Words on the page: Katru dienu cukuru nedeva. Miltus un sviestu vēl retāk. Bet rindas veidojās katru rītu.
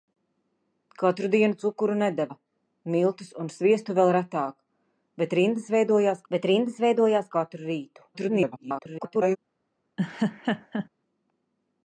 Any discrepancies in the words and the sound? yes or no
yes